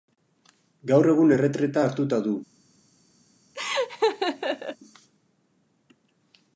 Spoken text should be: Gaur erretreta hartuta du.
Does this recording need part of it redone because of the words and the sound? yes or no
yes